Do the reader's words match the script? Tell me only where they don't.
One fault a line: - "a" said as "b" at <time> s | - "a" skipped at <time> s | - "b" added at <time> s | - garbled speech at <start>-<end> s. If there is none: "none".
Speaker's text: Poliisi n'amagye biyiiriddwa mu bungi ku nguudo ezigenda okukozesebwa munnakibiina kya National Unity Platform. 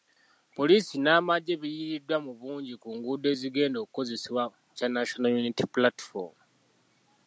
- "munnakibiina" skipped at 4.4 s